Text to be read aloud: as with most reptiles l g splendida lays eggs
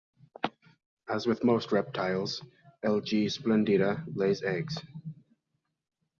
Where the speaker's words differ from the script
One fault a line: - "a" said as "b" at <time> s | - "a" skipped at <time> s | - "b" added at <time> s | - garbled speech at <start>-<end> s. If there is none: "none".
none